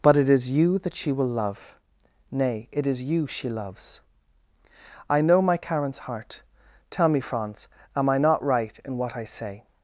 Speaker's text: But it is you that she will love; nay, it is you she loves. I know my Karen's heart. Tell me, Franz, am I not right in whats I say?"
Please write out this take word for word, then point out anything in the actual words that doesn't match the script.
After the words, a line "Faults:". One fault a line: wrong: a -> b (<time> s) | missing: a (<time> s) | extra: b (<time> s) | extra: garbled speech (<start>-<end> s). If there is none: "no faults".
But it is you that she will love; nay, it is you she loves. I know my Karen's heart. Tell me, Franz, am I not right in what I say?"
Faults:
wrong: whats -> what (9.0 s)